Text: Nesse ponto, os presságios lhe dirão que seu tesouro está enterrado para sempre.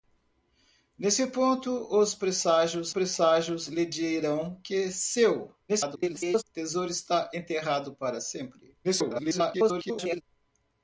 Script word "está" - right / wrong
right